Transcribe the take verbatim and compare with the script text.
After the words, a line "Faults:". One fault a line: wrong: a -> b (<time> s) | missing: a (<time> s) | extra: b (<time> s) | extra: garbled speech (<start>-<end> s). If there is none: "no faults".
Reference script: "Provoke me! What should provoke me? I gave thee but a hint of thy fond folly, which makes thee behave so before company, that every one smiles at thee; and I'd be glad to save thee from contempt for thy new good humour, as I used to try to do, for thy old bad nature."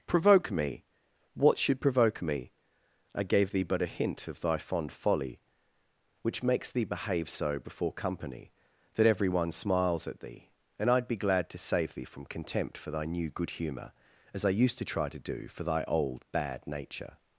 "Provoke me! What should provoke me? I gave thee but a hint of thy fond folly, which makes thee behave so before company, that every one smiles at thee; and I'd be glad to save thee from contempt for thy new good humour, as I used to try to do, for thy old bad nature."
Faults:
no faults